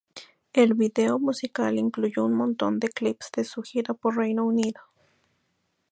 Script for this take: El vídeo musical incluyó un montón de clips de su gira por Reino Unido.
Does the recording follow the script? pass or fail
pass